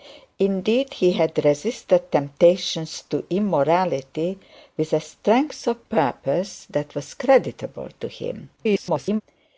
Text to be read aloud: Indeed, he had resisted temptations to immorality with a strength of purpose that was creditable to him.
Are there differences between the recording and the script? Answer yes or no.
yes